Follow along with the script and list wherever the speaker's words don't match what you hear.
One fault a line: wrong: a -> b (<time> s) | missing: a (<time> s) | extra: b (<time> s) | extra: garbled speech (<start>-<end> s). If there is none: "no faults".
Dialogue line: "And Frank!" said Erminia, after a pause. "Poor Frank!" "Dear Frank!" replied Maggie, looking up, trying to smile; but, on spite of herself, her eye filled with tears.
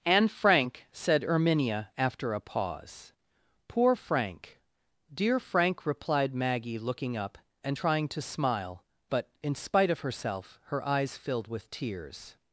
extra: and (7.6 s)
wrong: on -> in (9.4 s)
wrong: eye -> eyes (10.9 s)